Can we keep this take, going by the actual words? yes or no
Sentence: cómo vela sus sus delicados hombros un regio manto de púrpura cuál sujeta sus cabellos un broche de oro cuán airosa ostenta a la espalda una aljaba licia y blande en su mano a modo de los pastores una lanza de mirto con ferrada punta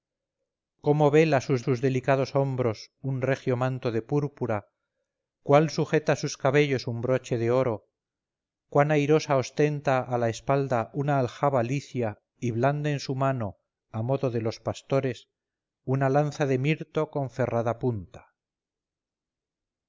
yes